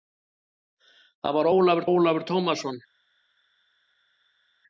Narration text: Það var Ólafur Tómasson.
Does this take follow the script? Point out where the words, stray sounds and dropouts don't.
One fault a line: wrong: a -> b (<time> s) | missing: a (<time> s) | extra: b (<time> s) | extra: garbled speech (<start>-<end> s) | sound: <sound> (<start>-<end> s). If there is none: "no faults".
extra: Ólafur (1.9 s)